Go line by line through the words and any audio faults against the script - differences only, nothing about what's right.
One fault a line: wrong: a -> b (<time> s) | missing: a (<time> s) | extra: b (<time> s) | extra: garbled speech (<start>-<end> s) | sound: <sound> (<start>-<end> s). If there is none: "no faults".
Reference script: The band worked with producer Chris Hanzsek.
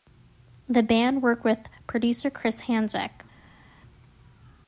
no faults